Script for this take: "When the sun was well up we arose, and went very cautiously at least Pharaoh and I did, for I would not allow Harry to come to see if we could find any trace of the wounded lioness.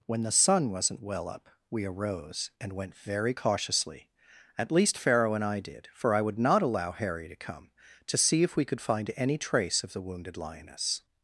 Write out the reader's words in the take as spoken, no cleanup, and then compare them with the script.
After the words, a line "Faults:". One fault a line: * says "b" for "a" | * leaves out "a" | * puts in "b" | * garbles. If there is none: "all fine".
"When the sun wasn't well up we arose, and went very cautiously at least Pharaoh and I did, for I would not allow Harry to come to see if we could find any trace of the wounded lioness.
Faults:
* says "wasn't" for "was"